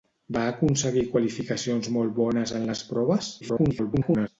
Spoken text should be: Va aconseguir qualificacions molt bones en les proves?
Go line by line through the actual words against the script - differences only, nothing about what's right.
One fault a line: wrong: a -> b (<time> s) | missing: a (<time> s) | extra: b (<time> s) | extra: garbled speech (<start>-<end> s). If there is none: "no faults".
extra: garbled speech (3.4-4.3 s)